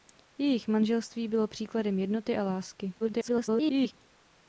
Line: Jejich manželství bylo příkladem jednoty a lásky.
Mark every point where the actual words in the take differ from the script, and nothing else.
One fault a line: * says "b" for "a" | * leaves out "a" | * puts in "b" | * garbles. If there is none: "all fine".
* garbles